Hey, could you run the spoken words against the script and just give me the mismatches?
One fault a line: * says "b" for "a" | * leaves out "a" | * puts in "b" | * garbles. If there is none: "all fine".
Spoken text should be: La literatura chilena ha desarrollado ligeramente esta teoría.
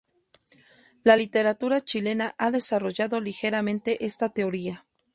all fine